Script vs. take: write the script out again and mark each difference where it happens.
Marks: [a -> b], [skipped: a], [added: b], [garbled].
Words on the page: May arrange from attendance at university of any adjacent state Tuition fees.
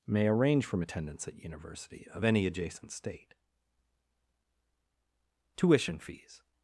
May arrange from attendance at university of any adjacent state Tuition fees.